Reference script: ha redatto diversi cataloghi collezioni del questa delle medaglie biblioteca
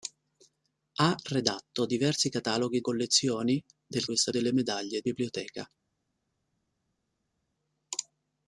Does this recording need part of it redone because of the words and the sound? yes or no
no